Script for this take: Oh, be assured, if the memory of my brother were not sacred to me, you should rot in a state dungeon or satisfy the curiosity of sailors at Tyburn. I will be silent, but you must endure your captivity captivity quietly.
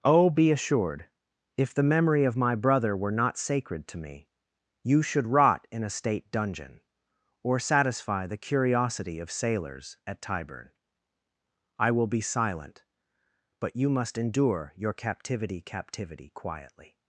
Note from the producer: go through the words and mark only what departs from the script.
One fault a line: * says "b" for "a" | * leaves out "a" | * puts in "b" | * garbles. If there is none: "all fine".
all fine